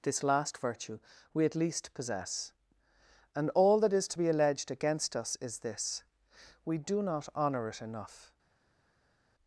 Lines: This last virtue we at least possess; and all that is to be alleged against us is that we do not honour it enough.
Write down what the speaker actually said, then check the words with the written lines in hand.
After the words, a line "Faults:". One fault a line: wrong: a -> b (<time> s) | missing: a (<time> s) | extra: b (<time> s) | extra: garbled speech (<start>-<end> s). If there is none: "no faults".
This last virtue we at least possess; and all that is to be alleged against us is this we do not honour it enough.
Faults:
wrong: that -> this (5.6 s)